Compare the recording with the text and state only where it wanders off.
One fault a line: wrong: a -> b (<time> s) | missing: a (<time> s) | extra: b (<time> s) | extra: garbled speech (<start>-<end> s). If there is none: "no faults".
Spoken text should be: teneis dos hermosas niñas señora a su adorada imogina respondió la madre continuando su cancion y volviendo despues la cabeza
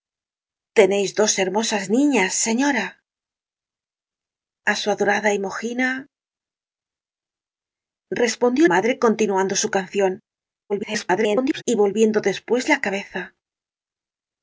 missing: la (8.7 s)
extra: garbled speech (10.7-11.6 s)